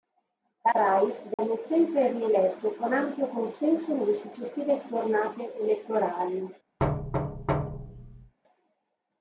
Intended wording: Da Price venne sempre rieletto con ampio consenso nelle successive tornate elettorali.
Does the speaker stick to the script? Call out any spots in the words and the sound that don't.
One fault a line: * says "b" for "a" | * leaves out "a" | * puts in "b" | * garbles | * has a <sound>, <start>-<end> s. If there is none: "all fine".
* has a dropout, 1.3-1.4 s
* has a thud, 6.8-8.3 s